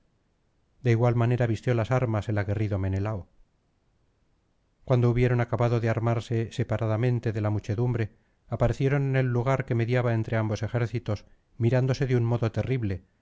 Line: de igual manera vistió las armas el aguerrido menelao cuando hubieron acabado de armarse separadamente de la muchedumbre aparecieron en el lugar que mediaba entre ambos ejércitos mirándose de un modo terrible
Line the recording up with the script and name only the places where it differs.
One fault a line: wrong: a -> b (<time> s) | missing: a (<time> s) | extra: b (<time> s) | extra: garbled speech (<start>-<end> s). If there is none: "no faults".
no faults